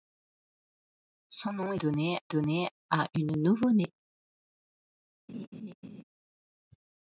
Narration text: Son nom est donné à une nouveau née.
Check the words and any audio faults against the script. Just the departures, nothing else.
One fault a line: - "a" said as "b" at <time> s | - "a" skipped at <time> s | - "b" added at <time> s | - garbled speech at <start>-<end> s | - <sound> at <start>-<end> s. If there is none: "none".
- "donné" added at 2.3 s
- laugh at 5.3-6.0 s